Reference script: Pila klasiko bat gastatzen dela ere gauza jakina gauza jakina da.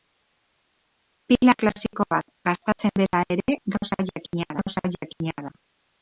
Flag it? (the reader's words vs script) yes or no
no